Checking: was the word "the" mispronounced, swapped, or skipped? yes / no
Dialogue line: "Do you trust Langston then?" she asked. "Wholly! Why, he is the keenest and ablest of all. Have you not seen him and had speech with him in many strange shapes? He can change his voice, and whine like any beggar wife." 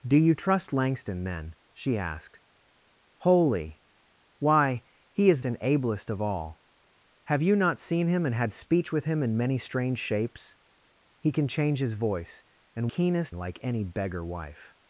yes